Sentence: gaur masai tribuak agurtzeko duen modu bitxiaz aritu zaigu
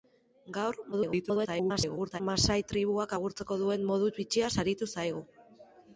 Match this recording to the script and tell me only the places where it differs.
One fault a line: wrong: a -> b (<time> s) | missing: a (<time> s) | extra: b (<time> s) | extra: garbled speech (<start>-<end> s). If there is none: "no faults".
extra: garbled speech (0.9-2.2 s)